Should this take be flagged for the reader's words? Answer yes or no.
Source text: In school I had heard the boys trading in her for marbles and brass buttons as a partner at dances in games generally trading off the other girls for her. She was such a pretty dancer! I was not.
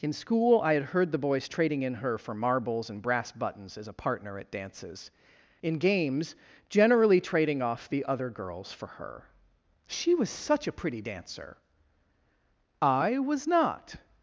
no